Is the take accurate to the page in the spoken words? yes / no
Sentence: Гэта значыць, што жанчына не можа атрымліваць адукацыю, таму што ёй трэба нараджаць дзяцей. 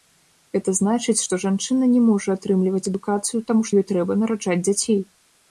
no